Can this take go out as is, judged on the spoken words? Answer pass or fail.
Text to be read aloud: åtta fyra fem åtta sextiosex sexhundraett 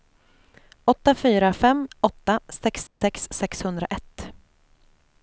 pass